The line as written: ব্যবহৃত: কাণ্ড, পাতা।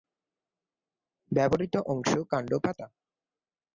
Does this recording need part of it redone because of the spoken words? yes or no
yes